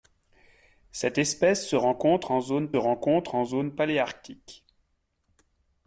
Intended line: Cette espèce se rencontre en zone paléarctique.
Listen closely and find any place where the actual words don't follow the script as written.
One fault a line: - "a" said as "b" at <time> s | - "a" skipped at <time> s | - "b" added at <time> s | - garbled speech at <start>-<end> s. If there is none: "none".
- "rencontre en zone" added at 2.8 s